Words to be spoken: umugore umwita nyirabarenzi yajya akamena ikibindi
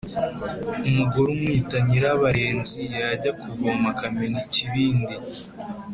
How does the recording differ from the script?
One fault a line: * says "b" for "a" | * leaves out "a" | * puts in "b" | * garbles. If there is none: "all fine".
* puts in "kuvoma"